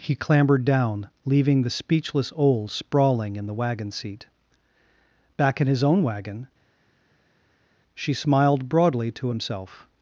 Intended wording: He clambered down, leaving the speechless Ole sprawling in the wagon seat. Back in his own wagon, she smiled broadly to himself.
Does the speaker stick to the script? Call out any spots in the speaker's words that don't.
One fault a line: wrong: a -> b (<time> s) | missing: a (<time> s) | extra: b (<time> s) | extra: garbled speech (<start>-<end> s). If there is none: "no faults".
no faults